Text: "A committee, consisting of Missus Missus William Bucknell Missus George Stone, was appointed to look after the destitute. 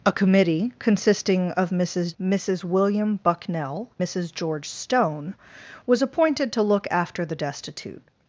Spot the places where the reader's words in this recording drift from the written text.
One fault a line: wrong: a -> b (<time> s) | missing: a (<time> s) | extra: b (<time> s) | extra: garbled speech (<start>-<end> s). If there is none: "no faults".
no faults